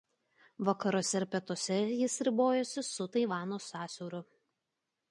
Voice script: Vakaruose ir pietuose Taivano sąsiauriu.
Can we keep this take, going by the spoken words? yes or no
no